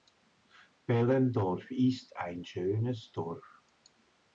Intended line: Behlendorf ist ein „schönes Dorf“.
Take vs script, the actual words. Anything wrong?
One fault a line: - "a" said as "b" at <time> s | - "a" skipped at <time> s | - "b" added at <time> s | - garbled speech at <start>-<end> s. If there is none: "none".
none